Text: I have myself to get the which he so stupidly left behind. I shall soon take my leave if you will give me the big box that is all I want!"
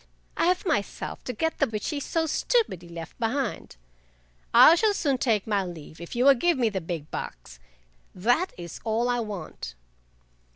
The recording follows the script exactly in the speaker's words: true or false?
true